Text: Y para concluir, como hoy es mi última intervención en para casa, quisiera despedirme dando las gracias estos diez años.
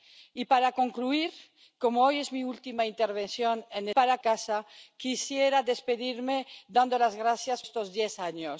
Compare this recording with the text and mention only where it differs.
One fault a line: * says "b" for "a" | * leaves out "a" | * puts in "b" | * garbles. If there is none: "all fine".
all fine